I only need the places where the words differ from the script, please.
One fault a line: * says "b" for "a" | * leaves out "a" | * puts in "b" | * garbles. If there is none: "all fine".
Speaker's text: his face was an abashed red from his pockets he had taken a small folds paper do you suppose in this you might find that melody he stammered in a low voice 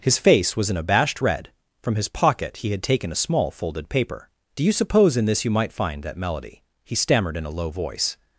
* says "pocket" for "pockets"
* says "folded" for "folds"